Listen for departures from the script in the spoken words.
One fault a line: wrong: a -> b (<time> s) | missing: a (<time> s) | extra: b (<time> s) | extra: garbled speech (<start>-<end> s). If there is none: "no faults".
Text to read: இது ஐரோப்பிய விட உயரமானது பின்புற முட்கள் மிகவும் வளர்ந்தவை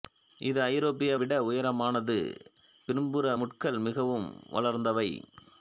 no faults